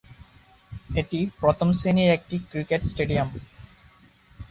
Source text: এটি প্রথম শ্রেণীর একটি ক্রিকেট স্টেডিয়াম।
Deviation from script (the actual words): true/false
false